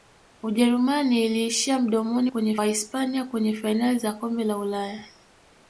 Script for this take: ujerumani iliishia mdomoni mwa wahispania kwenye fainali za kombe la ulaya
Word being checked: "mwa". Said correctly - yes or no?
no